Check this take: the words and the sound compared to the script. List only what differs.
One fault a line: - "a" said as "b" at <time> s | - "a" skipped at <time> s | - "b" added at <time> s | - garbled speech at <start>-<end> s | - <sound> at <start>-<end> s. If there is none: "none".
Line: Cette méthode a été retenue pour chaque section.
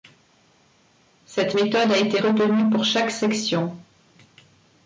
none